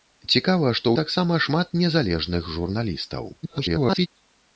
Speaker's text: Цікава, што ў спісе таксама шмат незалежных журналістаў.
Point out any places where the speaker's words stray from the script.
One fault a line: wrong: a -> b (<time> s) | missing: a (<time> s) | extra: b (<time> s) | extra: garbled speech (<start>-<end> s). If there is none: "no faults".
missing: ў спісе (0.9 s)
extra: garbled speech (3.4-4.1 s)